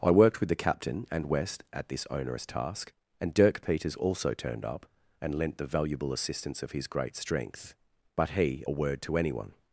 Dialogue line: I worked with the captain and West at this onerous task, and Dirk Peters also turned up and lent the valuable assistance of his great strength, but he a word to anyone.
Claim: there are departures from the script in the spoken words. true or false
false